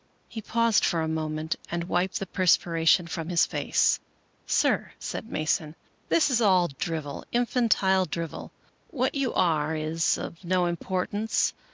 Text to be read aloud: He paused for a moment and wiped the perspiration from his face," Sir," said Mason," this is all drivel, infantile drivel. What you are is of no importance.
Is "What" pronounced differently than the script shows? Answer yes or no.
no